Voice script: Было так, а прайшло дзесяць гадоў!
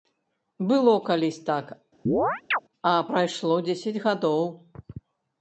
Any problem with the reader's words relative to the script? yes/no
yes